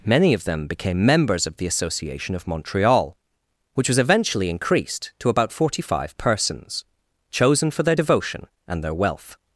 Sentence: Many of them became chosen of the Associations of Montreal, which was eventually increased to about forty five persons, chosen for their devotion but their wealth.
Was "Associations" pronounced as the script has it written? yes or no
no